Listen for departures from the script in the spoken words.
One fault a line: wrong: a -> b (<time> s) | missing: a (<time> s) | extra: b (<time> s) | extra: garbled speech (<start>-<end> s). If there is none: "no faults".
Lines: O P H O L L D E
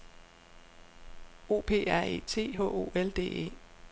extra: R E T (1.9 s)
missing: L (3.1 s)